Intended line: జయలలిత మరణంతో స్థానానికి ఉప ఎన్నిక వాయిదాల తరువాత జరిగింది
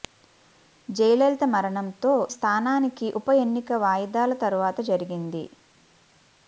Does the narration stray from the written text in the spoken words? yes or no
no